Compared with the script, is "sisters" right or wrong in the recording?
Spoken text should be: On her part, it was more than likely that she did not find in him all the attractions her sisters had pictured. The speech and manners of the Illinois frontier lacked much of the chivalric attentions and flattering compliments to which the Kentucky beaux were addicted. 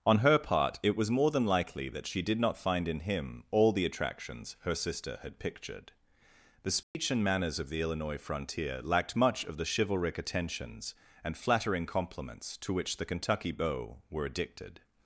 wrong